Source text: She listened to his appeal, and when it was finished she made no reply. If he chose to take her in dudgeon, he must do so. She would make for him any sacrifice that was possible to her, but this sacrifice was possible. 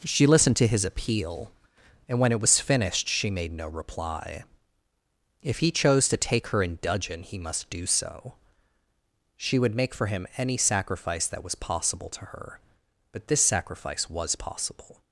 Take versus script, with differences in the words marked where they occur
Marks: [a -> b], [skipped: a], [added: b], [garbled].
She listened to his appeal, and when it was finished she made no reply. If he chose to take her in dudgeon, he must do so. She would make for him any sacrifice that was possible to her, but this sacrifice was possible.